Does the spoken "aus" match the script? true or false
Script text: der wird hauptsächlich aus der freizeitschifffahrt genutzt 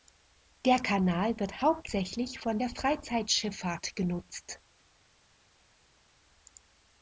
false